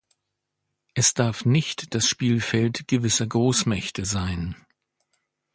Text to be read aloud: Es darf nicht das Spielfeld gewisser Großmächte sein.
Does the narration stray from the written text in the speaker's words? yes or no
no